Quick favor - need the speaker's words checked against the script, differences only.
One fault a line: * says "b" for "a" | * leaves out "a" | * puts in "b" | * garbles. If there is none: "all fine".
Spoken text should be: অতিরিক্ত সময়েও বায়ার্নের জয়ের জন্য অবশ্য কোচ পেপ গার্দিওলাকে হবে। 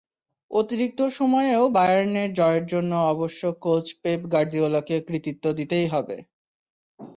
* puts in "কৃতিত্ব দিতেই"